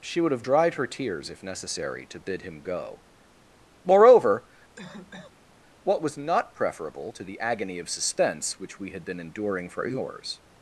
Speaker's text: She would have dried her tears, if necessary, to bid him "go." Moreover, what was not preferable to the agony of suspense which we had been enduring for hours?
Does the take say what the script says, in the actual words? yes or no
yes